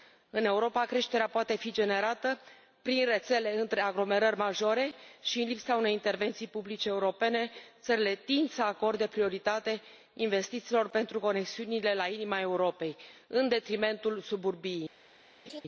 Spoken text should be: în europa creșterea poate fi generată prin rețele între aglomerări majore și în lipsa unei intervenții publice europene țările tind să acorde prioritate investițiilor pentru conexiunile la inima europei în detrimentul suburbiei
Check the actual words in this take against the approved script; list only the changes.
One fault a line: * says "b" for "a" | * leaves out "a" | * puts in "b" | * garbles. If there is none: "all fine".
all fine